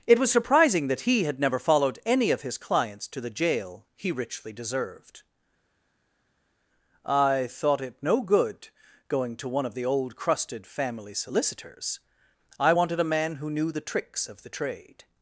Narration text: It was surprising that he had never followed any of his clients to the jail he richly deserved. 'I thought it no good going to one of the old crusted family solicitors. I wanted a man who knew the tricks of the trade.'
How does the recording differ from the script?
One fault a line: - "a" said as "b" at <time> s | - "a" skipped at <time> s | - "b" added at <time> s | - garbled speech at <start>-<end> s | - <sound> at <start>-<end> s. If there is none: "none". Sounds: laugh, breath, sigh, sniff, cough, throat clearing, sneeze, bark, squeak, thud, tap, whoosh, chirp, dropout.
none